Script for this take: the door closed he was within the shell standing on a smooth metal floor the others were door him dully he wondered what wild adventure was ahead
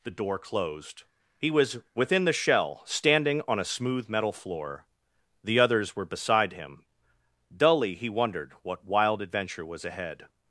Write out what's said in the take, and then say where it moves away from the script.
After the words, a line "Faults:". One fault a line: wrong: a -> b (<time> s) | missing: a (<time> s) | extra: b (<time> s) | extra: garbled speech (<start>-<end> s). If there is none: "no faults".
the door closed he was within the shell standing on a smooth metal floor the others were beside him dully he wondered what wild adventure was ahead
Faults:
wrong: door -> beside (6.0 s)